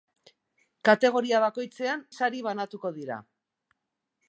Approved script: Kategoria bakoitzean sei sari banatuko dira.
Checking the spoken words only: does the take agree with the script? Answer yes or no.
no